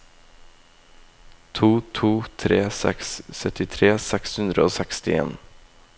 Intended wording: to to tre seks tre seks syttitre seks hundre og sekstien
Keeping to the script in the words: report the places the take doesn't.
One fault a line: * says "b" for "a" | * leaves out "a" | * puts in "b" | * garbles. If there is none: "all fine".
* leaves out "tre seks"